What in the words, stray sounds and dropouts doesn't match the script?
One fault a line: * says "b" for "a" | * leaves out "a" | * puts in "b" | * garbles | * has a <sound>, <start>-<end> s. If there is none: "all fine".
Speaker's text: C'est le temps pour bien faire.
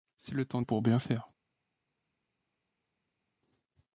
all fine